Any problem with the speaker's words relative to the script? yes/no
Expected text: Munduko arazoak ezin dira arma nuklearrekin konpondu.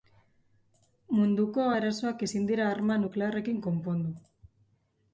no